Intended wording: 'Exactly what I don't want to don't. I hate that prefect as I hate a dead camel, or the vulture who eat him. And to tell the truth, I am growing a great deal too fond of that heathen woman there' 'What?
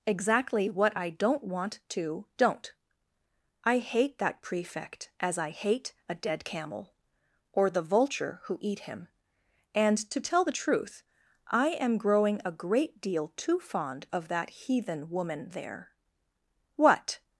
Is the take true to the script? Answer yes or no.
yes